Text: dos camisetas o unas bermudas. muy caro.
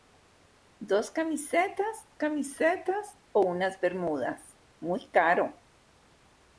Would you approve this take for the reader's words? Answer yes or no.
no